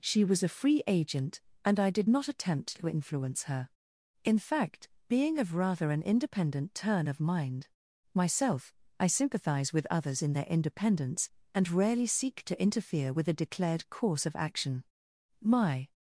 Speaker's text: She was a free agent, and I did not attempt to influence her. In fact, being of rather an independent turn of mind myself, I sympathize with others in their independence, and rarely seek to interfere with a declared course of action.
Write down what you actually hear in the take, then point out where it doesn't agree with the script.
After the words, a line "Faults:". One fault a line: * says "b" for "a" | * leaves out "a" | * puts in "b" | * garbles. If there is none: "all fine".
She was a free agent, and I did not attempt to influence her. In fact, being of rather an independent turn of mind myself, I sympathize with others in their independence, and rarely seek to interfere with a declared course of action. My
Faults:
* puts in "My"